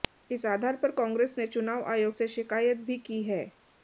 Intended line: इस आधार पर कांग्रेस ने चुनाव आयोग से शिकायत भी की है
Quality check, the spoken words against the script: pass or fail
pass